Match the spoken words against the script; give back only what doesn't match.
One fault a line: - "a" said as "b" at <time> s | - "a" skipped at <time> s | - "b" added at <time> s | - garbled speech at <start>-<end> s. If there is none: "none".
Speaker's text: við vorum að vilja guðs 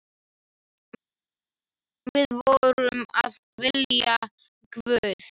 none